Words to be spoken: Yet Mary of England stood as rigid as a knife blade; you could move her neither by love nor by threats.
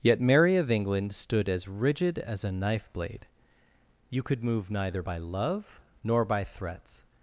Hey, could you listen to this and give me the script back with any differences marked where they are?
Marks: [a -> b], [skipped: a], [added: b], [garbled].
Yet Mary of England stood as rigid as a knife blade; you could move [skipped: her] neither by love nor by threats.